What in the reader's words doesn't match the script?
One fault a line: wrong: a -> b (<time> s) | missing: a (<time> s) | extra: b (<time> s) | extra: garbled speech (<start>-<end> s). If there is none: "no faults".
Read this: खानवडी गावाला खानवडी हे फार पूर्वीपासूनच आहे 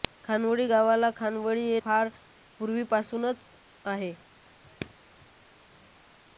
no faults